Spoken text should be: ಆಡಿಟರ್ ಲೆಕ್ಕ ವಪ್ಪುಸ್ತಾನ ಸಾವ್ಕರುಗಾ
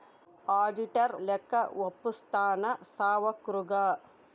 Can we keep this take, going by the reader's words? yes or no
yes